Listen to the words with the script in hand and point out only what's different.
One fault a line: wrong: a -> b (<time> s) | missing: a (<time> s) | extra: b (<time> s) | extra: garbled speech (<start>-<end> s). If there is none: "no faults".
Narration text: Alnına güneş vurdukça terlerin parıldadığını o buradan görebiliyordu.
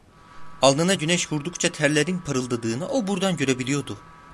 no faults